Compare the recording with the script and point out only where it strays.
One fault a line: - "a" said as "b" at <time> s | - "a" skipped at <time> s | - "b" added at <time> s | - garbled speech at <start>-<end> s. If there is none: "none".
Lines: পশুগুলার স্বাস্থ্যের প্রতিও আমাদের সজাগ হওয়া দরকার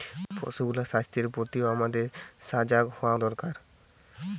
none